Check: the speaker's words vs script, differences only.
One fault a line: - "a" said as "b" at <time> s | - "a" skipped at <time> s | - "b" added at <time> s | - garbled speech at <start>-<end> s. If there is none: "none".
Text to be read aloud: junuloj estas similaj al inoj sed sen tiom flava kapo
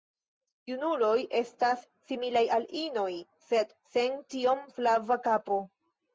none